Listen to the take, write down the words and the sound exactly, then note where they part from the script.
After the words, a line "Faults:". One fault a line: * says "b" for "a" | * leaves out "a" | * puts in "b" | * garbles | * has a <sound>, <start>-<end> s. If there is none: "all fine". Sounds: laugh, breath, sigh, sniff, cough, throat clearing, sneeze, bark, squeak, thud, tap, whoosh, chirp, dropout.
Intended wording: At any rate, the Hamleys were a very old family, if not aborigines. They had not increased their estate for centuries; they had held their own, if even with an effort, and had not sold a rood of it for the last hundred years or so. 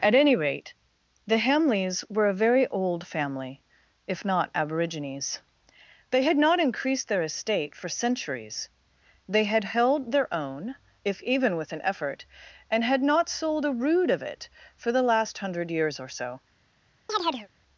At any rate, the Hamleys were a very old family, if not aborigines. They had not increased their estate for centuries; they had held their own, if even with an effort, and had not sold a rood of it for the last hundred years or so.
Faults:
* has a chirp, 17.1-17.5 s